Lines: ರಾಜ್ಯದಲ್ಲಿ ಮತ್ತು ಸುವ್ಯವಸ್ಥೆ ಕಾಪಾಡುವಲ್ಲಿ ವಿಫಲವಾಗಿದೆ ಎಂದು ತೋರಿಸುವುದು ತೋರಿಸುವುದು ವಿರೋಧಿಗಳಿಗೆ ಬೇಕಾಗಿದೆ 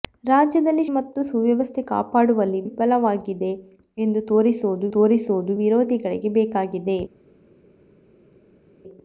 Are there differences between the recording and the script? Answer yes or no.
no